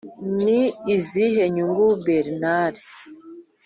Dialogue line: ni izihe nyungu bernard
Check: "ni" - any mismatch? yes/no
no